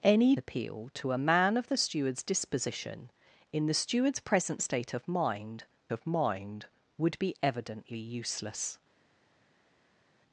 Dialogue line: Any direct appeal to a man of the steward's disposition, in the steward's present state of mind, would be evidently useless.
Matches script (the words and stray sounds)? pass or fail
fail